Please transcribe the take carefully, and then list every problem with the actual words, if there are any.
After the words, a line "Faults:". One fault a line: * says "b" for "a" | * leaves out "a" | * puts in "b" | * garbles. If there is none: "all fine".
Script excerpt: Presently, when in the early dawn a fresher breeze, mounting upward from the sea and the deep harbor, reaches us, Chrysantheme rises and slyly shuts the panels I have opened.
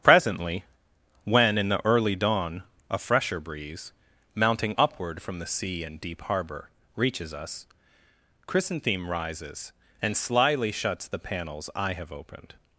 Presently, when in the early dawn a fresher breeze, mounting upward from the sea and deep harbor, reaches us, Chrysantheme rises and slyly shuts the panels I have opened.
Faults:
* leaves out "the"